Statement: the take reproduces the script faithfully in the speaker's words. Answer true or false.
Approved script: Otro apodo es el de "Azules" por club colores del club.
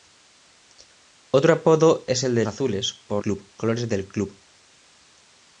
true